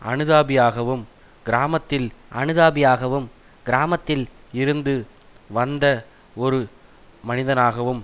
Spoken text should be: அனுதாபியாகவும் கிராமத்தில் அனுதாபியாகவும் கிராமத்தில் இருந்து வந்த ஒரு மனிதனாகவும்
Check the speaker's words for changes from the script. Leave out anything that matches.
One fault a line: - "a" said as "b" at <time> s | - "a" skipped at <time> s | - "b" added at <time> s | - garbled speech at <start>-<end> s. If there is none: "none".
none